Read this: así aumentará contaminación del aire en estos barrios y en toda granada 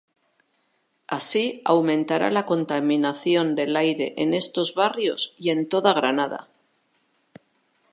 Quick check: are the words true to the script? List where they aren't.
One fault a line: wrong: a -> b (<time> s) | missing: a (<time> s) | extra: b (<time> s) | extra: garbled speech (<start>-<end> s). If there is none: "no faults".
extra: la (2.3 s)